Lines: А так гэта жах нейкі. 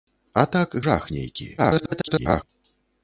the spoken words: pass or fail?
fail